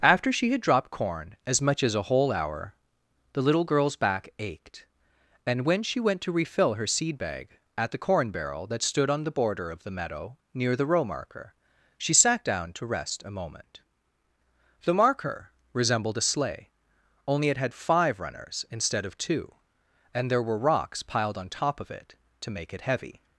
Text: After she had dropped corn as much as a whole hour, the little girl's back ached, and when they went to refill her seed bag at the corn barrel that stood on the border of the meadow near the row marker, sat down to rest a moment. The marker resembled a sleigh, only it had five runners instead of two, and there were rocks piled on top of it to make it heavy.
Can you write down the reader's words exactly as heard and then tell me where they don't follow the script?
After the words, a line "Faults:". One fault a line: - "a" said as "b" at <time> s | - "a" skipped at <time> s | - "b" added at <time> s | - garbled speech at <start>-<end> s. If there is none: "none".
After she had dropped corn as much as a whole hour, the little girl's back ached, and when she went to refill her seed bag at the corn barrel that stood on the border of the meadow near the row marker, she sat down to rest a moment. The marker resembled a sleigh, only it had five runners instead of two, and there were rocks piled on top of it to make it heavy.
Faults:
- "they" said as "she" at 5.8 s
- "she" added at 12.0 s